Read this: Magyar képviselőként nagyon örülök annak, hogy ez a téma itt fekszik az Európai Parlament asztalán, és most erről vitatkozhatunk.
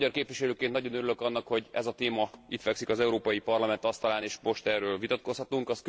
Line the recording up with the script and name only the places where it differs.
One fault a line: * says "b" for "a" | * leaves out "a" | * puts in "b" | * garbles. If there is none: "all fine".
all fine